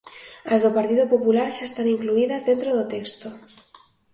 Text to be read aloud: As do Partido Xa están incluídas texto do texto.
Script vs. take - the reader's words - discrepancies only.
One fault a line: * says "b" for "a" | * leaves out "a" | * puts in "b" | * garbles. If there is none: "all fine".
* puts in "Popular"
* says "dentro" for "texto"